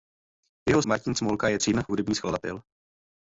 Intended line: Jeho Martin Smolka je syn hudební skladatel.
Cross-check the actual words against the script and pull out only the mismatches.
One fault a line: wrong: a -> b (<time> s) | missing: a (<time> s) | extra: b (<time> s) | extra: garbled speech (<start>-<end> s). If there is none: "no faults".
no faults